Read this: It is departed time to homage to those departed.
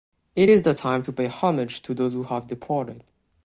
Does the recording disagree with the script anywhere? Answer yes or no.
yes